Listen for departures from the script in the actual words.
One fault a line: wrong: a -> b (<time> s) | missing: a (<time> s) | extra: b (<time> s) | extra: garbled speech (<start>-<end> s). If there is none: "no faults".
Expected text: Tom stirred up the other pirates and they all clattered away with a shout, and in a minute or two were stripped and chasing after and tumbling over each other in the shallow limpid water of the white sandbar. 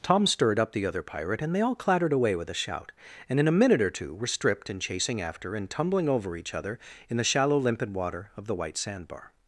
wrong: pirates -> pirate (1.0 s)